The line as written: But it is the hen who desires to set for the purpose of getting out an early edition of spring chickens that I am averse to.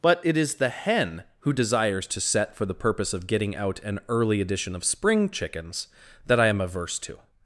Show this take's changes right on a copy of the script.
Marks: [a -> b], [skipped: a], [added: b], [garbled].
But it is the hen who desires to set for the purpose of getting out an early edition of spring chickens that I am averse to.